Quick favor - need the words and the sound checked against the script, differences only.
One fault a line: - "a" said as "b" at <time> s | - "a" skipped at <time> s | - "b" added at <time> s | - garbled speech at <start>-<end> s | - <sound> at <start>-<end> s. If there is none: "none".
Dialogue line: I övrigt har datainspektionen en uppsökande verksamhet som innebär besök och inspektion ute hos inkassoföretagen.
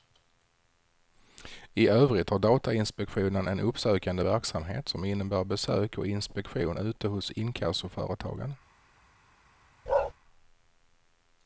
- bark at 9.9-10.1 s